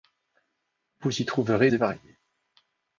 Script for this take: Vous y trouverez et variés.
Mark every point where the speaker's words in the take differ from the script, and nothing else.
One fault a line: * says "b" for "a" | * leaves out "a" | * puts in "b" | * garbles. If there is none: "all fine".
all fine